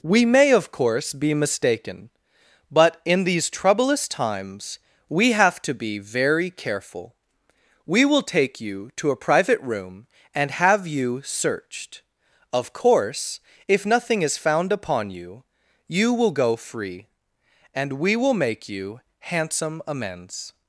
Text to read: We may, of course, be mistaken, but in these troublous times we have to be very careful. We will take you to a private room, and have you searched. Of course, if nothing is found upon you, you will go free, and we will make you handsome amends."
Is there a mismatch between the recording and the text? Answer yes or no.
no